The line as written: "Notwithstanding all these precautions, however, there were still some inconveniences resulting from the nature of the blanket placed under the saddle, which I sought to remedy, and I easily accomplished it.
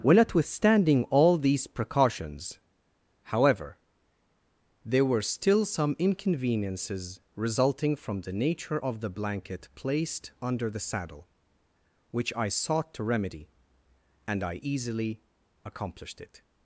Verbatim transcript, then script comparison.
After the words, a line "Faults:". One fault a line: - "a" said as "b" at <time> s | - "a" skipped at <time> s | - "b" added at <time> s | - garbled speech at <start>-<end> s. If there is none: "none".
well "Notwithstanding all these precautions, however, there were still some inconveniences resulting from the nature of the blanket placed under the saddle, which I sought to remedy, and I easily accomplished it.
Faults:
- "well" added at 0.0 s